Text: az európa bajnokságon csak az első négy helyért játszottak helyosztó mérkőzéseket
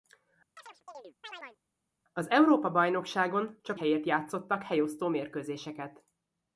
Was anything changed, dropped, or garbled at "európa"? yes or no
no